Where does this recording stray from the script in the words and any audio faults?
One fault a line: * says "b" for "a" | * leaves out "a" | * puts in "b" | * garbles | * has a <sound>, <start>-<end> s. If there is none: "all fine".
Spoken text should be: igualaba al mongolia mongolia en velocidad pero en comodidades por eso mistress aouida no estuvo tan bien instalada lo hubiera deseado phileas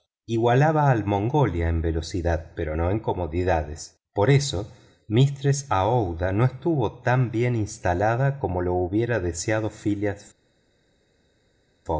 * leaves out "mongolia"
* puts in "no"
* puts in "como"